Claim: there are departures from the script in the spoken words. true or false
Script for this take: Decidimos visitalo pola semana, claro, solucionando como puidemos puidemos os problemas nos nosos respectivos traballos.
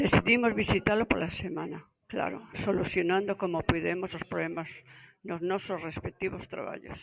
true